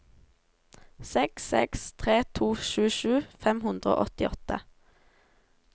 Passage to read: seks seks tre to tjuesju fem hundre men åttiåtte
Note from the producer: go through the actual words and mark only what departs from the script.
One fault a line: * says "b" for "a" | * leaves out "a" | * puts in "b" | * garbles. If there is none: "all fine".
* says "og" for "men"